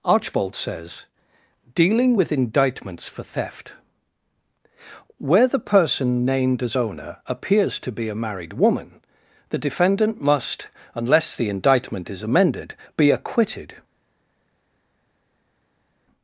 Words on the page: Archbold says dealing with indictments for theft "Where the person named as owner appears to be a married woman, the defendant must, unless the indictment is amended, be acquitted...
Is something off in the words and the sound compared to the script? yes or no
no